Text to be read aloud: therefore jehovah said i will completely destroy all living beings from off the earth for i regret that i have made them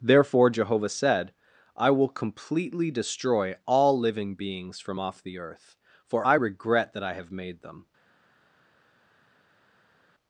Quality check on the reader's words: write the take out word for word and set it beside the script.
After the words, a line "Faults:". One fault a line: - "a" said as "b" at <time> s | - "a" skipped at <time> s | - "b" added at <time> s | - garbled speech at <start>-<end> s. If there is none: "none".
therefore jehovah said i will completely destroy all living beings from off the earth for i regret that i have made them
Faults:
none